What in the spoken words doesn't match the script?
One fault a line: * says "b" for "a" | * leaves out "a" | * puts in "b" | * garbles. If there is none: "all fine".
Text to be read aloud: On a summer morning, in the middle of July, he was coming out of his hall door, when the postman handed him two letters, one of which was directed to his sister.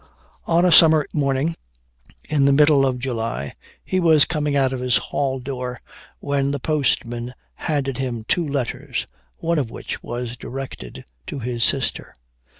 all fine